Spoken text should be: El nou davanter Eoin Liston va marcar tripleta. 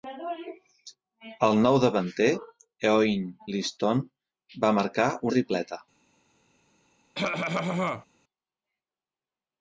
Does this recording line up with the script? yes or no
yes